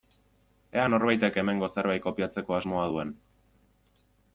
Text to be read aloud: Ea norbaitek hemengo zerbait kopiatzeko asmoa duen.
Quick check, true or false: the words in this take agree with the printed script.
true